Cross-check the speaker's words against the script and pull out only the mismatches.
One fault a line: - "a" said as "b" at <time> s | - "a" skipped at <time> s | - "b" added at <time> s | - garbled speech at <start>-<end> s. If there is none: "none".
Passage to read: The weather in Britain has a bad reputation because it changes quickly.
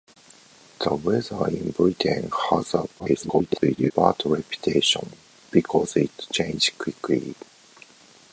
- garbled speech at 3.0-3.9 s